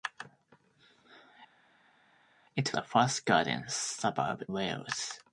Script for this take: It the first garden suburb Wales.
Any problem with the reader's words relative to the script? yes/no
no